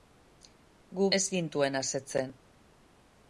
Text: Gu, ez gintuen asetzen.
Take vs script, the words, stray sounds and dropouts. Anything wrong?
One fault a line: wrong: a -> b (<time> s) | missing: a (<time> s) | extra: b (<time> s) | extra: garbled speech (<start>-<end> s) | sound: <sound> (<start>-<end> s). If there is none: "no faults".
no faults